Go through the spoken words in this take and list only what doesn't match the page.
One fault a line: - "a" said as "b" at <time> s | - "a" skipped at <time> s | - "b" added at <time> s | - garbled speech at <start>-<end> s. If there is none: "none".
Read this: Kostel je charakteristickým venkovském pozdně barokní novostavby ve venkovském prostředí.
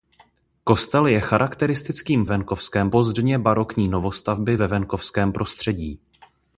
none